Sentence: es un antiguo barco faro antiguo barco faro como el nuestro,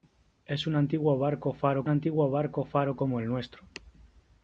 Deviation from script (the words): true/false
false